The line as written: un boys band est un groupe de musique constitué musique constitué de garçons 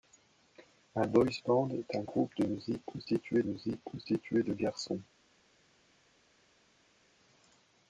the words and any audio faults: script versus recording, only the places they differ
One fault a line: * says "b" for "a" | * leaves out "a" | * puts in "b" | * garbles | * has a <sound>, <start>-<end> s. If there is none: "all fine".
all fine